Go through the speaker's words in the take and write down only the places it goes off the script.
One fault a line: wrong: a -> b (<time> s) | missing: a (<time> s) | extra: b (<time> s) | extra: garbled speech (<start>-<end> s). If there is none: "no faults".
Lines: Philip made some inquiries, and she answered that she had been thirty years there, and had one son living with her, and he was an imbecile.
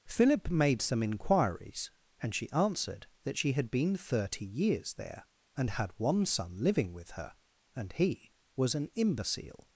no faults